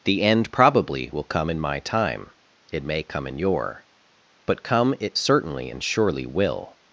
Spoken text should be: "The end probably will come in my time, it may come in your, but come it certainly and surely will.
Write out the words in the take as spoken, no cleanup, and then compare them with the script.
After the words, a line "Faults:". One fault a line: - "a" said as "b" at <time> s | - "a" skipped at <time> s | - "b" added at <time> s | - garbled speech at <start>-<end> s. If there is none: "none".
"The end probably will come in my time, it may come in your, but come it certainly and surely will.
Faults:
none